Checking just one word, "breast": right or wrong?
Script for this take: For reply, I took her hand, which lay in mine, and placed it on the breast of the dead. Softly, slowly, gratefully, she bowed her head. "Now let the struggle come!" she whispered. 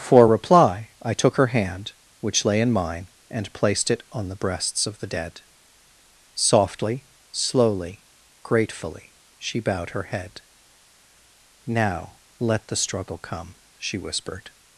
wrong